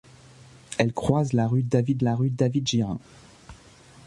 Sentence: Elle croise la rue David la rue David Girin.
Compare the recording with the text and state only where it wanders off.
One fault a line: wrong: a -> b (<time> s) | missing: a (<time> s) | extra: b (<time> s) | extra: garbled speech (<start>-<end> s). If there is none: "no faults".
no faults